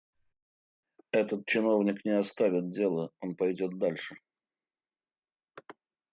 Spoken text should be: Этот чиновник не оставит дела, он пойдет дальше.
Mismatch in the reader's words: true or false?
false